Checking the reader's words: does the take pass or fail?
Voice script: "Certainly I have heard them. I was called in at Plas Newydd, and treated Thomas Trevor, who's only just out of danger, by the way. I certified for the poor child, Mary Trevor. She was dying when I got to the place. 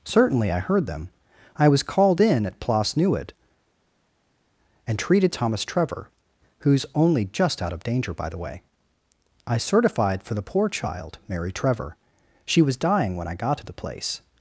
fail